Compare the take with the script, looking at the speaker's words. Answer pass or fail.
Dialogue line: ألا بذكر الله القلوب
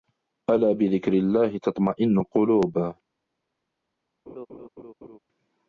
fail